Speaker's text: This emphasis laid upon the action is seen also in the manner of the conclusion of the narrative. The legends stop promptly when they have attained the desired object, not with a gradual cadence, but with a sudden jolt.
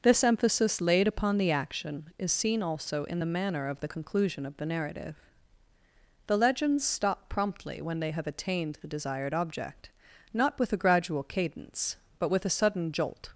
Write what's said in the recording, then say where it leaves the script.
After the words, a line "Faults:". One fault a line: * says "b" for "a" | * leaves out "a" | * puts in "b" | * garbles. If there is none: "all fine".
This emphasis laid upon the action is seen also in the manner of the conclusion of the narrative. The legends stop promptly when they have attained the desired object, not with a gradual cadence, but with a sudden jolt.
Faults:
all fine